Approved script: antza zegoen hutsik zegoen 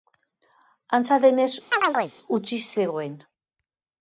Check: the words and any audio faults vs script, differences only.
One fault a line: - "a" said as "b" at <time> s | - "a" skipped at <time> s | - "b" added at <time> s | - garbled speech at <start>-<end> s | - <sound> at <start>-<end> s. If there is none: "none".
- "zegoen" said as "denez" at 1.3 s
- chirp at 1.7-2.1 s